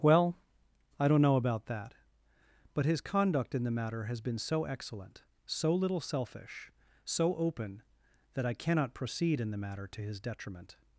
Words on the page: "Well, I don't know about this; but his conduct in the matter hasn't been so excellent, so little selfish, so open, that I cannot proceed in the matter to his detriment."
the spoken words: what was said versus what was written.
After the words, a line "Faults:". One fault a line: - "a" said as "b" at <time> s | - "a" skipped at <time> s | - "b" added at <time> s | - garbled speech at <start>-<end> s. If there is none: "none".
"Well, I don't know about that; but his conduct in the matter has been so excellent, so little selfish, so open, that I cannot proceed in the matter to his detriment."
Faults:
- "this" said as "that" at 1.7 s
- "hasn't" said as "has" at 4.1 s